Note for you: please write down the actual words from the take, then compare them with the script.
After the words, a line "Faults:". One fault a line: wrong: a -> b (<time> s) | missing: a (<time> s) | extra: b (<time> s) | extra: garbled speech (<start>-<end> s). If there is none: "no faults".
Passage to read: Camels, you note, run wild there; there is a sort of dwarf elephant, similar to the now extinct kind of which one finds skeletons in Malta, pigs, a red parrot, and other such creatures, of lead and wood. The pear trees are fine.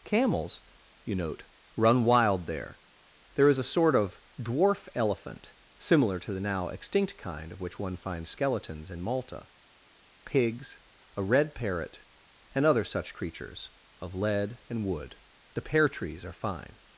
Camels, you note, run wild there; there is a sort of dwarf elephant, similar to the now extinct kind of which one finds skeletons in Malta, pigs, a red parrot, and other such creatures, of lead and wood. The pear trees are fine.
Faults:
no faults